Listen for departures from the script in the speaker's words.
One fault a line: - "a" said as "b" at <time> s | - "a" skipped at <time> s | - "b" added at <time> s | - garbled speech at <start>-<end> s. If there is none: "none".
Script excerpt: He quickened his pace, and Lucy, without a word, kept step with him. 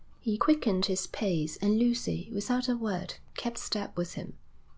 none